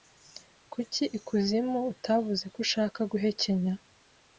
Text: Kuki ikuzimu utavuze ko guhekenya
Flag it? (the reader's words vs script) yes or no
yes